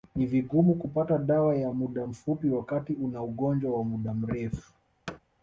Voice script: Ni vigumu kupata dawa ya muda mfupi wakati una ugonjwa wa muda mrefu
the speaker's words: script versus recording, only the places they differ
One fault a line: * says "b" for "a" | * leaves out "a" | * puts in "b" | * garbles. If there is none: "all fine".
all fine